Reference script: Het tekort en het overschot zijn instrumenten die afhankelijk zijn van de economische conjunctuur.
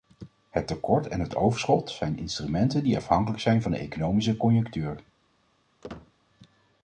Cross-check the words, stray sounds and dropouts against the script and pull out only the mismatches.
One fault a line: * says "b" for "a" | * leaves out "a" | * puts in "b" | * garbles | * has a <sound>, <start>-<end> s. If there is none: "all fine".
* has a squeak, 5.8-6.1 s